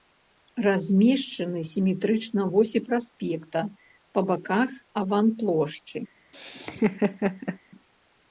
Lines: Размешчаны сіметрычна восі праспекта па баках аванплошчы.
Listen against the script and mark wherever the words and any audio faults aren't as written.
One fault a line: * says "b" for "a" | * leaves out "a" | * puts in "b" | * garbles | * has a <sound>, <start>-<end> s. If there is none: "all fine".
* has a laugh, 6.3-7.6 s